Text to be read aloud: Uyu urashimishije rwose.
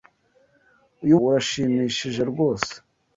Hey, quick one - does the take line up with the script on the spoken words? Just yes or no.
yes